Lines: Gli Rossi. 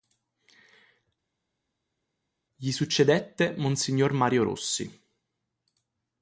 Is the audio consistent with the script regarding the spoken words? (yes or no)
no